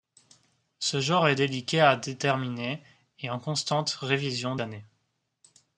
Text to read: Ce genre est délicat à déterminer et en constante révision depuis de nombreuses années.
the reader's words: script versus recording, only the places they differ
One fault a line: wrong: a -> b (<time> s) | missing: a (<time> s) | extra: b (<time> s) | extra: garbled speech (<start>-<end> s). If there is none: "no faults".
missing: depuis de nombreuses (4.6 s)